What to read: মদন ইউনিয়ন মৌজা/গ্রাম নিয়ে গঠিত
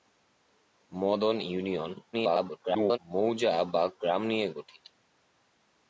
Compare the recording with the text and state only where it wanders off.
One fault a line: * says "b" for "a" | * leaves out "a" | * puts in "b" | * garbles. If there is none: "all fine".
* garbles